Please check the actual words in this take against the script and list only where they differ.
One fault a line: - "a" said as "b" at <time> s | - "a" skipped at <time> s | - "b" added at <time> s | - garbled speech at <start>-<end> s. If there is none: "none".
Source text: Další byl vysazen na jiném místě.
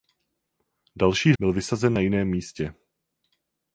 none